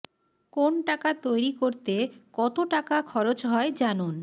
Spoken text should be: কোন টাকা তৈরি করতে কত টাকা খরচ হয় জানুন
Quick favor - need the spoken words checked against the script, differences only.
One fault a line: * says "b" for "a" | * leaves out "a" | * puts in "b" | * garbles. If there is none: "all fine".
all fine